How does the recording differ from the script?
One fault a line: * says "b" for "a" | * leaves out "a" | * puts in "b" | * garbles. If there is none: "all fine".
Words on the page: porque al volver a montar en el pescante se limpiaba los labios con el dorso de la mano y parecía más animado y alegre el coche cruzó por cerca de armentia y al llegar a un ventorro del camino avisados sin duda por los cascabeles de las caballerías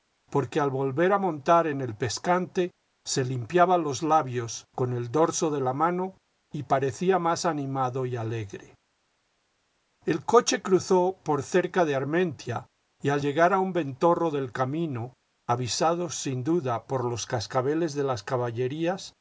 all fine